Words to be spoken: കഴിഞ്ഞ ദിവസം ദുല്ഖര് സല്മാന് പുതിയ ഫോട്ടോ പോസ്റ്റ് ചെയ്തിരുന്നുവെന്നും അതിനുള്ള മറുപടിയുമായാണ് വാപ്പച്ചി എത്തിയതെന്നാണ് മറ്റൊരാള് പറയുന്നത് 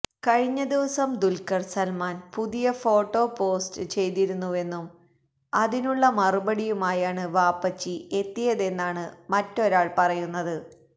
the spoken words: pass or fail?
pass